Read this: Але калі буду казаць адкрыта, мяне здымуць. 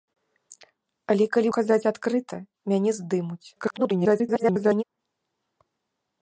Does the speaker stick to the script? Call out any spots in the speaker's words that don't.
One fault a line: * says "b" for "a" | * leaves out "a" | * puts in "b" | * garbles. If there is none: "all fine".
* leaves out "буду"
* garbles